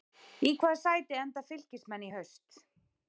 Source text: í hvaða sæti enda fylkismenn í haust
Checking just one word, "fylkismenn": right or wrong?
right